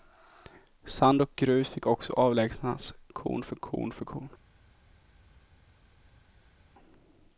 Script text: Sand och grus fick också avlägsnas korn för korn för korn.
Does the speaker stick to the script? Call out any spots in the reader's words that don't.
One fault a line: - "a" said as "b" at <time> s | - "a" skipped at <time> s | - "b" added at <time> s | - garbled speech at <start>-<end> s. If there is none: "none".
none